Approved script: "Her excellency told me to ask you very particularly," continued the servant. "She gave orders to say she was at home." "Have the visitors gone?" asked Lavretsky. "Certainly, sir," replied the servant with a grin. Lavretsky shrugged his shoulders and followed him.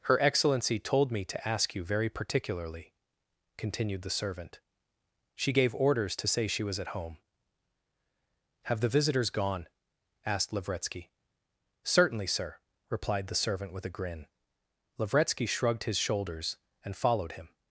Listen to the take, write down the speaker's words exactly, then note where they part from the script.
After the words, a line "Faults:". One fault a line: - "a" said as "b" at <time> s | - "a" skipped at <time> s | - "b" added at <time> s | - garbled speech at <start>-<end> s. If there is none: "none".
"Her excellency told me to ask you very particularly," continued the servant. "She gave orders to say she was at home." "Have the visitors gone?" asked Lavretsky. "Certainly, sir," replied the servant with a grin. Lavretsky shrugged his shoulders and followed him.
Faults:
none